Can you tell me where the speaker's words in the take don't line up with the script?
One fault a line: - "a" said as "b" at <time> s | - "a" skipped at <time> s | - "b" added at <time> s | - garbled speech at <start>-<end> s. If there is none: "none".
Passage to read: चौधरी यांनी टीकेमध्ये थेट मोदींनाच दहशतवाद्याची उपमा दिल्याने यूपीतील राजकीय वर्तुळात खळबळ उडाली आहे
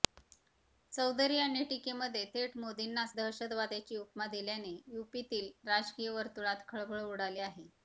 none